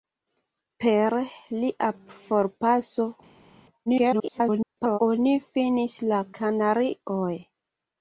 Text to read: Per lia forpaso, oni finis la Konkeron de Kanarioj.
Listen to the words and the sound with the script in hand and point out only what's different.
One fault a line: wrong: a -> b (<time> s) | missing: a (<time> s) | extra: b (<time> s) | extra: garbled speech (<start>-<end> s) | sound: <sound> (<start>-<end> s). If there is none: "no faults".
extra: garbled speech (3.9-5.0 s)
missing: Konkeron de (6.2 s)